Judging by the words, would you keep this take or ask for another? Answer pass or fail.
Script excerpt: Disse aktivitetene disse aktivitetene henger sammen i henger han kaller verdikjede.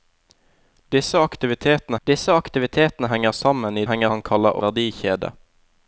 pass